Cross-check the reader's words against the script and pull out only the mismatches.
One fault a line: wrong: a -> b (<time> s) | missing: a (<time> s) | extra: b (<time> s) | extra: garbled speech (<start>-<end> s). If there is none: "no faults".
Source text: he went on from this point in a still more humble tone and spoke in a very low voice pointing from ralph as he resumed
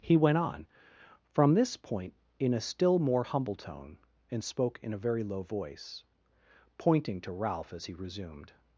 wrong: from -> to (7.2 s)